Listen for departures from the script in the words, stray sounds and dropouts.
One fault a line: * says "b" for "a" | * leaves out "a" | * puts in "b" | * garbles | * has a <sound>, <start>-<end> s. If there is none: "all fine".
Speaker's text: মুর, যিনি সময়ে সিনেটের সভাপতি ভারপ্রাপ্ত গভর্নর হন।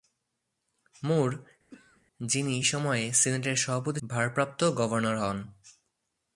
* has a throat clearing, 1.7-2.0 s